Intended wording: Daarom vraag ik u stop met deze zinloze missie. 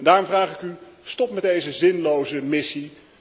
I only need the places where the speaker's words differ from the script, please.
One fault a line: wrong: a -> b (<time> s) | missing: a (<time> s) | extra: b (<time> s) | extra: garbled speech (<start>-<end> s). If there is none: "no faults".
no faults